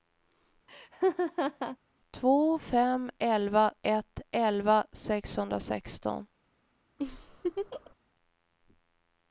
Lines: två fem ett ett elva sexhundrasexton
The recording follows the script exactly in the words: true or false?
false